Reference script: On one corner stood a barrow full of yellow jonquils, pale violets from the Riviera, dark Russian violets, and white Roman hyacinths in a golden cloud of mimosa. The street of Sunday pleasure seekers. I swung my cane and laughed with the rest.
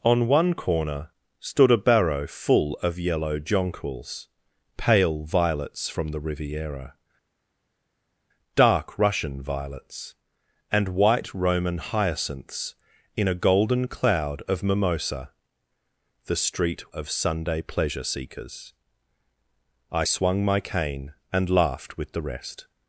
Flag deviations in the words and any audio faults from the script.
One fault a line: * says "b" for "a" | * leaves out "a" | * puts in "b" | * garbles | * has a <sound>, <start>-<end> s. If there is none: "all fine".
all fine